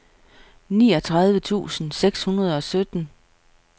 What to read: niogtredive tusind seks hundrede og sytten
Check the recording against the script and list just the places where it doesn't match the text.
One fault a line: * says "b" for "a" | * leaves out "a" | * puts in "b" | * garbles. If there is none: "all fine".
all fine